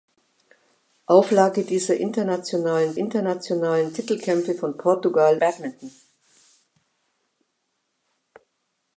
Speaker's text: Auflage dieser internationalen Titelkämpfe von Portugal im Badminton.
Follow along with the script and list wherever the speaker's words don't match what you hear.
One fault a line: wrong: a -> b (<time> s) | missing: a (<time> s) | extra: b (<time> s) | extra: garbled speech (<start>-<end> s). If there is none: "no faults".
extra: internationalen (2.9 s)
missing: im (5.4 s)